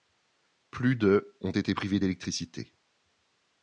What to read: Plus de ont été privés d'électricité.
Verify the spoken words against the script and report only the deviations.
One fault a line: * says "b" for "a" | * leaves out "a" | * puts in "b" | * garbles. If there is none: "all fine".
all fine